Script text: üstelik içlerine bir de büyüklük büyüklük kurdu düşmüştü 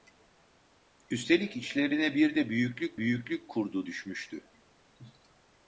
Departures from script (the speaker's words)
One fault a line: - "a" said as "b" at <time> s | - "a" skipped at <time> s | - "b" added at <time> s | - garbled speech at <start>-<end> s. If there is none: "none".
none